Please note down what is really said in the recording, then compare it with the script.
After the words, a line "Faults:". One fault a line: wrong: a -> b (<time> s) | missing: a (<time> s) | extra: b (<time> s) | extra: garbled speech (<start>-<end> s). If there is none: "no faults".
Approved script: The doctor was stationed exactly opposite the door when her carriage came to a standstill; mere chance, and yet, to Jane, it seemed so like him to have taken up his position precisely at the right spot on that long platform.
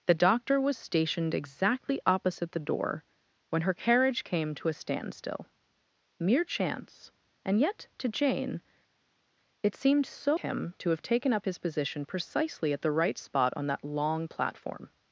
The doctor was stationed exactly opposite the door when her carriage came to a standstill; mere chance, and yet, to Jane, it seemed so him to have taken up his position precisely at the right spot on that long platform.
Faults:
missing: like (10.4 s)